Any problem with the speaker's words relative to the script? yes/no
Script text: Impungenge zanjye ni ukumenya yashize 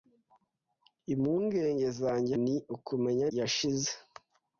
no